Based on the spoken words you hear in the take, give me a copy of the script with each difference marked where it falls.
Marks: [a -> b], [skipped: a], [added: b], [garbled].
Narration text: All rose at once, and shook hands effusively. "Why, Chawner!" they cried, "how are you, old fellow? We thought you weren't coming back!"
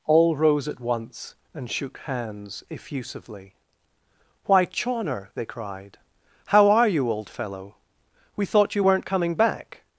All rose at once, and shook hands effusively. "Why, Chawner!" they cried, "how are you, old fellow? We thought you weren't coming back!"